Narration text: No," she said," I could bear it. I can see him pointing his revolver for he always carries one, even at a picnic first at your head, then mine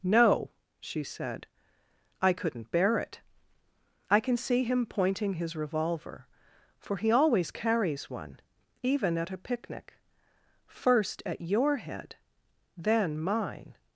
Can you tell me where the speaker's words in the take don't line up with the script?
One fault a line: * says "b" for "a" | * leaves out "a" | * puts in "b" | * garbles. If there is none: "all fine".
* says "couldn't" for "could"